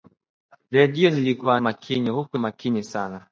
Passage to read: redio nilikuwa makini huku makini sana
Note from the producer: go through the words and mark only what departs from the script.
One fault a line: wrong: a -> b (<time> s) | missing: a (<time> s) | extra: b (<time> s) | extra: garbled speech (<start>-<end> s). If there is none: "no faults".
no faults